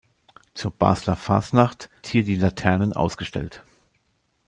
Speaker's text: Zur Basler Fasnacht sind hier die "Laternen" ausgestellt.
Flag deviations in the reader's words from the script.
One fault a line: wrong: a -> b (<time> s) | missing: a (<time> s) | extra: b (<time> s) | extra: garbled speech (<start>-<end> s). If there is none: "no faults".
missing: sind (1.9 s)